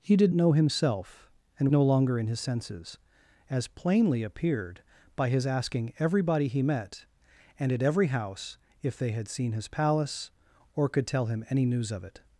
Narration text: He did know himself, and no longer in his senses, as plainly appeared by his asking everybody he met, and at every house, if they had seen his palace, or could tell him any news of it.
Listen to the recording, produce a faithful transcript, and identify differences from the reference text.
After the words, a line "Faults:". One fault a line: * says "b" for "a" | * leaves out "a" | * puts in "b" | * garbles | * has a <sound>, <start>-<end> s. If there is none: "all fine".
He did know himself, and no longer in his senses, as plainly appeared by his asking everybody he met, and at every house, if they had seen his palace, or could tell him any news of it.
Faults:
all fine